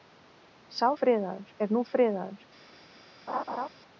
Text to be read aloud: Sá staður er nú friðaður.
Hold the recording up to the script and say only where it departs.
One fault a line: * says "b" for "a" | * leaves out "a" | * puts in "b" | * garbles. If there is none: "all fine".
* says "friðaður" for "staður"